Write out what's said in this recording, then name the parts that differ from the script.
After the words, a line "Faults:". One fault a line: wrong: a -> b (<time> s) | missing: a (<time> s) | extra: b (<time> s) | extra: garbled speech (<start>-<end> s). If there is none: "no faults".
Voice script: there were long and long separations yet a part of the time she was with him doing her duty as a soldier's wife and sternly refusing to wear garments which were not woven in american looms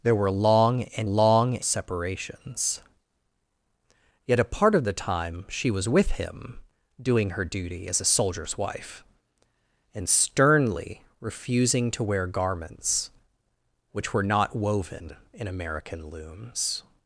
there were long and long separations yet a part of the time she was with him doing her duty as a soldier's wife and sternly refusing to wear garments which were not woven in american looms
Faults:
no faults